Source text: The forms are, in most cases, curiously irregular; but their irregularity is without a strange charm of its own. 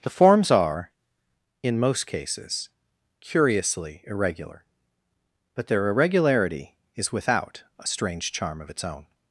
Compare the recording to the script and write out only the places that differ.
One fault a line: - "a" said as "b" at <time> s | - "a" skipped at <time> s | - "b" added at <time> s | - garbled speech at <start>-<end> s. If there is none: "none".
none